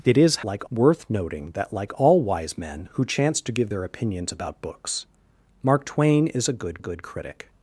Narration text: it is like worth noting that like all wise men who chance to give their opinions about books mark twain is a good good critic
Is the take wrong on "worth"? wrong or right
right